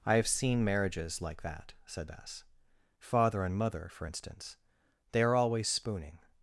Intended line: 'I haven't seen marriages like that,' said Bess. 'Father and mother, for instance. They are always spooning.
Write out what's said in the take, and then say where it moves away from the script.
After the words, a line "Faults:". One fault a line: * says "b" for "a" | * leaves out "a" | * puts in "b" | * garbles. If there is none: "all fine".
'I have seen marriages like that,' said Bess. 'Father and mother, for instance. They are always spooning.
Faults:
* says "have" for "haven't"